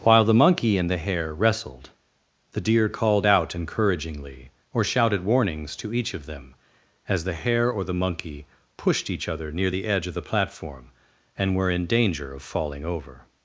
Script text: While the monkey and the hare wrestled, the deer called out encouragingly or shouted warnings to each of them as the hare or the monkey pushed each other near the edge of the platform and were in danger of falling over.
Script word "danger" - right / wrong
right